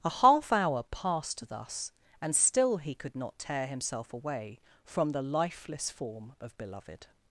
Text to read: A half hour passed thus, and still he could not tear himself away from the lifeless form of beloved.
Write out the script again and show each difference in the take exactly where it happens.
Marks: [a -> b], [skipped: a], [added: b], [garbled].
A half hour passed thus, and still he could not tear himself away from the lifeless form of beloved.